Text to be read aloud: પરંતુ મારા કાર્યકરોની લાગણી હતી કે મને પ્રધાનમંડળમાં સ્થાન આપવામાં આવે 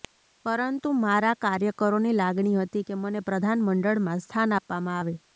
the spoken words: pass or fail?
pass